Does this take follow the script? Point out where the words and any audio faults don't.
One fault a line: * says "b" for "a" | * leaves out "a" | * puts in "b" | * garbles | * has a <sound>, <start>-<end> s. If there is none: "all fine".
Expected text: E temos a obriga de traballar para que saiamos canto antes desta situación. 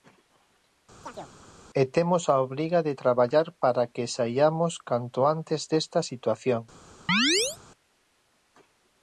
* has a chirp, 1.0-1.3 s
* has a chirp, 7.1-7.6 s